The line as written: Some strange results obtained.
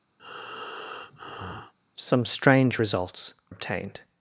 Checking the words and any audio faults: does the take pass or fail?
fail